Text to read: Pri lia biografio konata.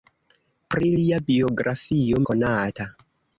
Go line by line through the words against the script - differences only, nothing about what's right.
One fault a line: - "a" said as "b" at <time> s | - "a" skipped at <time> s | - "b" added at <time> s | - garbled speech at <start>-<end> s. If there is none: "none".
none